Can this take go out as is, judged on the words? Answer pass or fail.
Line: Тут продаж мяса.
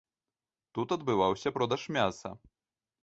fail